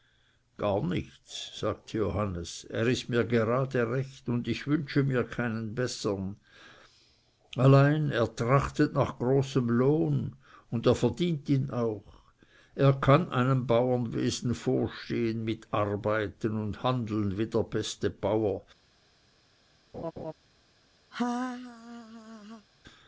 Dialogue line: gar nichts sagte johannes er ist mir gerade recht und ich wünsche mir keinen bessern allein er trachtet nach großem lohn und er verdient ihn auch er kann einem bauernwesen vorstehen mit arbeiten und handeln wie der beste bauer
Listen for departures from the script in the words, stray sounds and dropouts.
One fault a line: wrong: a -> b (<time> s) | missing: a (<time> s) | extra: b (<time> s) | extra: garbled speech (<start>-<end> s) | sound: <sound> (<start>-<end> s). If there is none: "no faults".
sound: laugh (19.9-20.3 s)
sound: laugh (21.1-22.7 s)